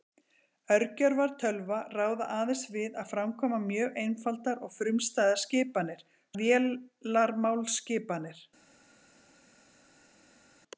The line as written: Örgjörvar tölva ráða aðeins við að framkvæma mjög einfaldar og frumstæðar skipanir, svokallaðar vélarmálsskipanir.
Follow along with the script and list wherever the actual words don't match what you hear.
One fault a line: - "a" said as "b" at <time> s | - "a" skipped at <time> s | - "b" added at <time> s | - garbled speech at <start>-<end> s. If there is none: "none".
- "svokallaðar" skipped at 6.1 s